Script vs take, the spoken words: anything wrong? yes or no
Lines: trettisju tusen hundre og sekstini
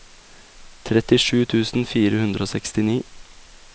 yes